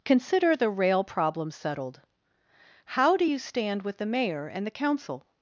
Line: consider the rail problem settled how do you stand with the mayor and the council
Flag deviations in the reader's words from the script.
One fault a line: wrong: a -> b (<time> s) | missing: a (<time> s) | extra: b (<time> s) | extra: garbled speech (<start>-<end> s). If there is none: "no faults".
no faults